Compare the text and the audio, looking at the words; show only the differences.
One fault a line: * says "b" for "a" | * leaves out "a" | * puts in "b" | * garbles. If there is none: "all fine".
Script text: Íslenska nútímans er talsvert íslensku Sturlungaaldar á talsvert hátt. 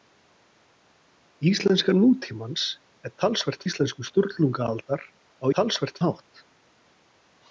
all fine